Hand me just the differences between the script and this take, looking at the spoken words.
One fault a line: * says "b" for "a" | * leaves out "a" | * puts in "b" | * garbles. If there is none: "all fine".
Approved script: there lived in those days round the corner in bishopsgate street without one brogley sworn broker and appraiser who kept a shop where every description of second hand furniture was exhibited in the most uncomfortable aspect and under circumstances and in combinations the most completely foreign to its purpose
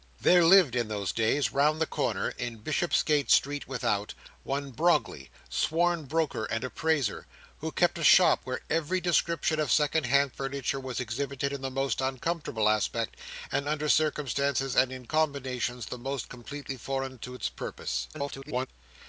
* garbles